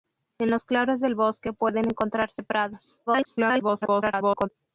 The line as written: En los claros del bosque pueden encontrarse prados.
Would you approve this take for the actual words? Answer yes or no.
no